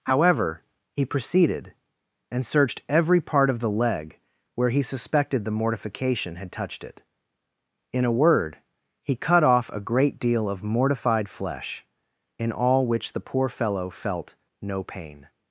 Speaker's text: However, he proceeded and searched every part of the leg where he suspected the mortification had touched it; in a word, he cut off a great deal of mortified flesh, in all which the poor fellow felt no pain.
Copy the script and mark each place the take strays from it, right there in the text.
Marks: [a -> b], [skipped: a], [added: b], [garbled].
However, he proceeded and searched every part of the leg where he suspected the mortification had touched it; in a word, he cut off a great deal of mortified flesh, in all which the poor fellow felt no pain.